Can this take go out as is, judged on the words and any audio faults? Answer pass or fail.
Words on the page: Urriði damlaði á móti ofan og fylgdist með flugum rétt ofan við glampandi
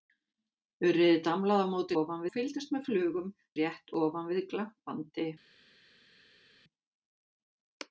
pass